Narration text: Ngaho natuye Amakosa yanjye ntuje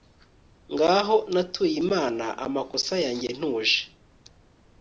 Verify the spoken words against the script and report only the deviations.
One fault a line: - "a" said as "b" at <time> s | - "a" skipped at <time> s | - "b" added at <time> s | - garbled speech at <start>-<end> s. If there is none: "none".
- "Imana" added at 1.8 s